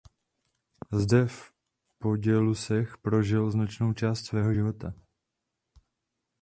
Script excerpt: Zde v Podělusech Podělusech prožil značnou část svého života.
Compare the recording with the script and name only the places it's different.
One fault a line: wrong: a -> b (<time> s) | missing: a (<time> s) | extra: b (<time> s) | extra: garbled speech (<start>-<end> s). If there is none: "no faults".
missing: Podělusech (3.0 s)